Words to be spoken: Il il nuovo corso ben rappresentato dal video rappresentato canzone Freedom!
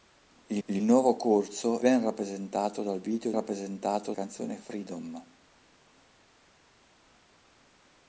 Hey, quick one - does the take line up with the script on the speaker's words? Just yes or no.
yes